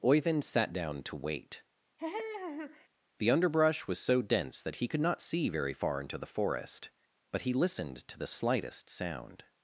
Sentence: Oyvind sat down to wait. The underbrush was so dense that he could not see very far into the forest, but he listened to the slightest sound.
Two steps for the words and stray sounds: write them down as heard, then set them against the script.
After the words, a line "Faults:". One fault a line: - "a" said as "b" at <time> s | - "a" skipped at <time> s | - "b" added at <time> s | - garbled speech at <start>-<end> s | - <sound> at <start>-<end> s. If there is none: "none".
Oyvind sat down to wait. The underbrush was so dense that he could not see very far into the forest, but he listened to the slightest sound.
Faults:
- laugh at 2.0-2.9 s